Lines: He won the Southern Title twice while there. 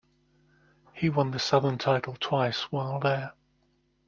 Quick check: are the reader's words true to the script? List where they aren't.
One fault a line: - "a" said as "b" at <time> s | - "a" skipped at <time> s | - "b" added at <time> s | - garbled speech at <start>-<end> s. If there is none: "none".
none